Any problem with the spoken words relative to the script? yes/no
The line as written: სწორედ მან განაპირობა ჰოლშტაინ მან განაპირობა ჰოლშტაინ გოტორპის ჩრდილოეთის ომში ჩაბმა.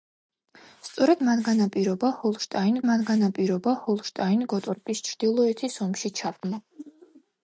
no